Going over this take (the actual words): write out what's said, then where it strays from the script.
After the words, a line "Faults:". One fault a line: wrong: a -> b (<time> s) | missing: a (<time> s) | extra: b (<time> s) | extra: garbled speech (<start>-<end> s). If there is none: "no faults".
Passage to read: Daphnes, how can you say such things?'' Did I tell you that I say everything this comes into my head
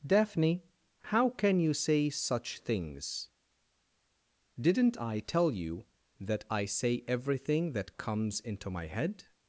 Daphne, how can you say such things?'' Didn't I tell you that I say everything that comes into my head
Faults:
wrong: Daphnes -> Daphne (0.1 s)
wrong: Did -> Didn't (4.6 s)
wrong: this -> that (7.7 s)